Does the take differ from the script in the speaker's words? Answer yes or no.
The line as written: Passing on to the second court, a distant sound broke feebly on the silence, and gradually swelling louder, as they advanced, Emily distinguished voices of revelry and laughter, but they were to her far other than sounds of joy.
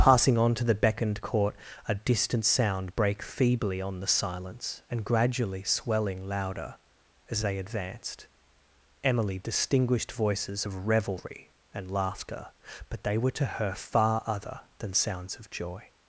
yes